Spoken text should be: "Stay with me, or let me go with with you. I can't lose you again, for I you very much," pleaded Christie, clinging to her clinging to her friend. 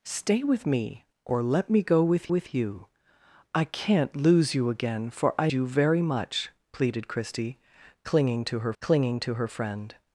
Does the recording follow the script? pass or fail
pass